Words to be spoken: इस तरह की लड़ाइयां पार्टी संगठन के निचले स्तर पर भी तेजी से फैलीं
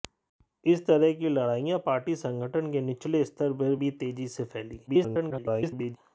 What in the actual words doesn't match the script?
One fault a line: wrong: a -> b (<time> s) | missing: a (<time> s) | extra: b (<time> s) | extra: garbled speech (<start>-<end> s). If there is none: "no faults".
extra: garbled speech (4.9-6.0 s)